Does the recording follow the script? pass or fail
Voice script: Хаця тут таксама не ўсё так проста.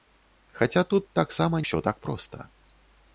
fail